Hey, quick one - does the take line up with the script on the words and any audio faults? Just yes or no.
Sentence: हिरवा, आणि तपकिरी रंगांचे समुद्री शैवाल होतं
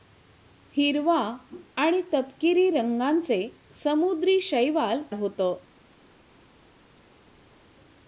yes